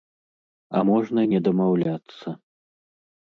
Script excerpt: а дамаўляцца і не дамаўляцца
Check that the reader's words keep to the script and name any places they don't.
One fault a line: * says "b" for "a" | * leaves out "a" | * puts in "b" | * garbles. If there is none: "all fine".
* says "можна" for "дамаўляцца"